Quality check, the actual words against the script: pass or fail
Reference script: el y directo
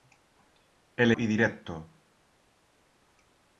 pass